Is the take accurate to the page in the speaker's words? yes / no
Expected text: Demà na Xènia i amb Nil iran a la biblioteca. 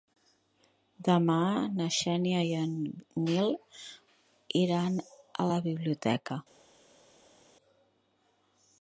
no